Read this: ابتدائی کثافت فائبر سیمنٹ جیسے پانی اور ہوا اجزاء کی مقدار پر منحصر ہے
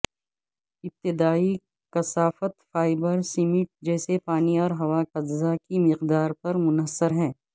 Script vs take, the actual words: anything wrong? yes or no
no